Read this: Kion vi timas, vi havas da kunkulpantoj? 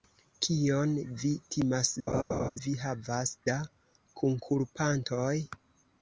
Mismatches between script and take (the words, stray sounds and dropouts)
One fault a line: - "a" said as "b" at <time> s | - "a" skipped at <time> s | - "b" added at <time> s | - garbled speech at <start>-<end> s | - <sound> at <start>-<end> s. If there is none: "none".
- laugh at 2.1-2.5 s